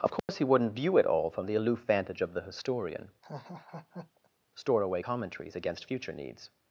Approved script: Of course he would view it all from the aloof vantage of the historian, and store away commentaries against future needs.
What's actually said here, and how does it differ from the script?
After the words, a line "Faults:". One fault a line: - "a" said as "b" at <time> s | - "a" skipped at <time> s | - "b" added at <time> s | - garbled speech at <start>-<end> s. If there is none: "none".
Of course he wouldn't view it all from the aloof vantage of the historian, store away commentaries against future needs.
Faults:
- "would" said as "wouldn't" at 0.5 s
- "and" skipped at 3.1 s